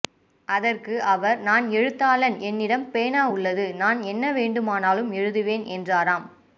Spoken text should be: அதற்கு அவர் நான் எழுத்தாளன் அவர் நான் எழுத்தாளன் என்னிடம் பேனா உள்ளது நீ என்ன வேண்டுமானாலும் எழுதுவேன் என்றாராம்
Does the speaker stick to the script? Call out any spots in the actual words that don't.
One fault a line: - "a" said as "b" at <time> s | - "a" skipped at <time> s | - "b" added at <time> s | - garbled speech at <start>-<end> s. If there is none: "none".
- "அவர் நான் எழுத்தாளன்" skipped at 2.4 s
- "நீ" said as "நான்" at 3.8 s